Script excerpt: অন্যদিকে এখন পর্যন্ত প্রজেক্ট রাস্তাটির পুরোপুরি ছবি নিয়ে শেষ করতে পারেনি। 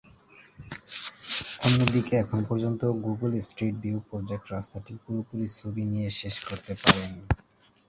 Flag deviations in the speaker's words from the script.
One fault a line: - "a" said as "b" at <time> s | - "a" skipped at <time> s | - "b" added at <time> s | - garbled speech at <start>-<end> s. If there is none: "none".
- "গুগল স্ট্রিট ভিউ" added at 3.0 s